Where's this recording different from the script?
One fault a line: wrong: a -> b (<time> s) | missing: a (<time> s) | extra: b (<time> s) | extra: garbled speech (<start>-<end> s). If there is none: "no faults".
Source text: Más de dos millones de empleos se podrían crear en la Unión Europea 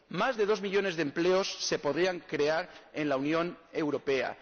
no faults